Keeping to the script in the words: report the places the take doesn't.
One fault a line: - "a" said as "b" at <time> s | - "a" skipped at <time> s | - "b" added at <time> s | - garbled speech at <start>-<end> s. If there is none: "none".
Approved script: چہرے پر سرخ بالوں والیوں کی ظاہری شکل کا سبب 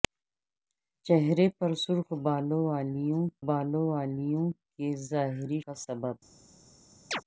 - "بالوں والیوں" added at 3.5 s
- "شکل" skipped at 5.6 s